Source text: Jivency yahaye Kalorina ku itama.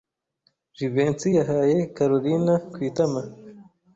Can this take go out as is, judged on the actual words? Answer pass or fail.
pass